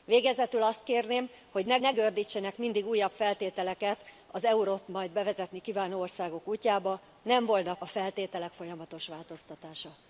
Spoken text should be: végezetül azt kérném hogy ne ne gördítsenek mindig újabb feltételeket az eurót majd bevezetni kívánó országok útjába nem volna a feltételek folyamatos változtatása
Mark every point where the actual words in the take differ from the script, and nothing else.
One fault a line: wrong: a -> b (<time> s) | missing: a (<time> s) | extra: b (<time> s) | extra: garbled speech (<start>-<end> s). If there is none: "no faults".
no faults